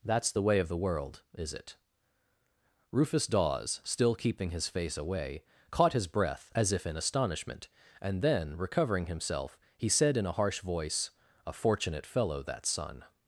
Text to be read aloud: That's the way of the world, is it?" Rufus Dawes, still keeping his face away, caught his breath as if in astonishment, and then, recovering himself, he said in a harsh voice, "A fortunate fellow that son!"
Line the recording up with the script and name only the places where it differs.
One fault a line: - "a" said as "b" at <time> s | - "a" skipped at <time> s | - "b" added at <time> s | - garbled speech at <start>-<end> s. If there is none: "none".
none